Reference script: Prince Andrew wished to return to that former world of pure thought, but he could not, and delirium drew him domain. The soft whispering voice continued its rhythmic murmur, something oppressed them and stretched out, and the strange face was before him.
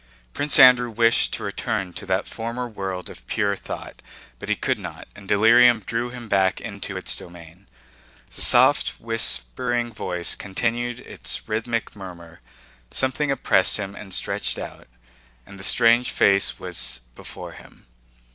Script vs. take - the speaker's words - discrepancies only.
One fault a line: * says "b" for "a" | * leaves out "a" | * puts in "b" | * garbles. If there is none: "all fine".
* puts in "back into its"
* says "him" for "them"